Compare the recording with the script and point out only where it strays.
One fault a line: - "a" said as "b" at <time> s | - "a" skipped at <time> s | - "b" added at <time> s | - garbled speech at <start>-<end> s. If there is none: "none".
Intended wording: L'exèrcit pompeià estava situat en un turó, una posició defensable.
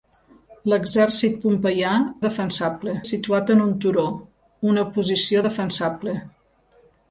- "estava" said as "defensable" at 2.3 s